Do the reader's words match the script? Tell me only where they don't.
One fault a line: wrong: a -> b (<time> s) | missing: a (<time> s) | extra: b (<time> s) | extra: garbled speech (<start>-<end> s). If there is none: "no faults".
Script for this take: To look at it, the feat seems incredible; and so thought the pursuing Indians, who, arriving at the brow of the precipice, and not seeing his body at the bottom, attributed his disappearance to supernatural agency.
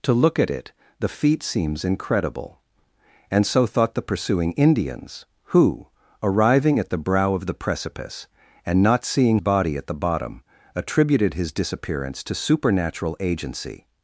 missing: his (9.4 s)